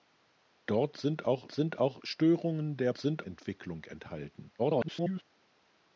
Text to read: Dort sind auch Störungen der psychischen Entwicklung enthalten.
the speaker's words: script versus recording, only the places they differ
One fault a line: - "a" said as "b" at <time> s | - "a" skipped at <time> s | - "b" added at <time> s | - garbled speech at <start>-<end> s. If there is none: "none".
- "sind auch" added at 1.5 s
- "psychischen" said as "sind" at 3.0 s
- garbled speech at 4.6-5.2 s